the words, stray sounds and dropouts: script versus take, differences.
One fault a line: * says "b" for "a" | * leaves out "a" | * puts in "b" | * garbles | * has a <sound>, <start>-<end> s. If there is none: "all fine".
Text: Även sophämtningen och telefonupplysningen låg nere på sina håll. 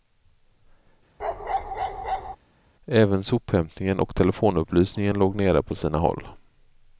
* has a bark, 1.2-2.4 s